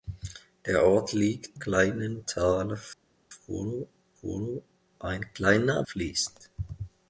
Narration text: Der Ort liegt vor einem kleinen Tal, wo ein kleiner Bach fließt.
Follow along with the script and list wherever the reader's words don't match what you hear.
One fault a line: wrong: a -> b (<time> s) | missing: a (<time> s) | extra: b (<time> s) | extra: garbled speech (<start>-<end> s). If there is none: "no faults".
missing: vor einem (1.6 s)
extra: wo (4.2 s)
missing: Bach (5.8 s)